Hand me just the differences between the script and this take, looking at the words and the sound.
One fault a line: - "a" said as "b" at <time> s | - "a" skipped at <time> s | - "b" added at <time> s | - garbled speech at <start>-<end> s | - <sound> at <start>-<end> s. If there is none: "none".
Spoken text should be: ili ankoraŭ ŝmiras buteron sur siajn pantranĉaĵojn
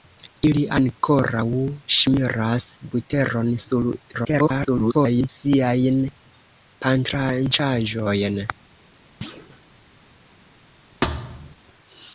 - garbled speech at 4.1-5.3 s
- thud at 9.2-9.6 s
- thud at 11.0-11.6 s